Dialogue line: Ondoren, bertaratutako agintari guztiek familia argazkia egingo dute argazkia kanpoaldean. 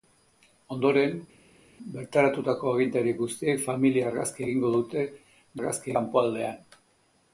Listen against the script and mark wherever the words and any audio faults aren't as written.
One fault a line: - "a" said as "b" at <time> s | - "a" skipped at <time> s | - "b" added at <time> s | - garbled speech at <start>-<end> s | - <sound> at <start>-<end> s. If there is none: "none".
none